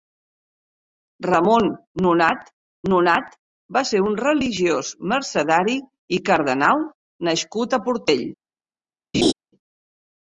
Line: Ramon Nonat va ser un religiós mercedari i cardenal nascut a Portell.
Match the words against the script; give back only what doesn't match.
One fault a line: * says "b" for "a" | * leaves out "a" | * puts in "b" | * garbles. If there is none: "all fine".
* puts in "Nonat"